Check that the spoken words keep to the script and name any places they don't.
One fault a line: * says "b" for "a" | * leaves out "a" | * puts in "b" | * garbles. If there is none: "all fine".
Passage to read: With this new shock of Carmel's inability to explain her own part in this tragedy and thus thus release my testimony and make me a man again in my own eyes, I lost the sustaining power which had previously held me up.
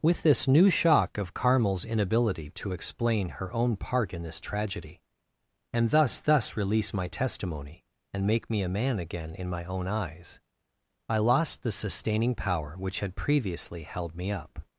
all fine